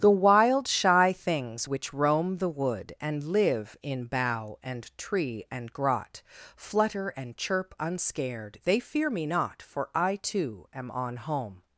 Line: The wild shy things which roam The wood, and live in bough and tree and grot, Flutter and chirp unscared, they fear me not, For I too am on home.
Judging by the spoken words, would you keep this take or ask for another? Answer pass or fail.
pass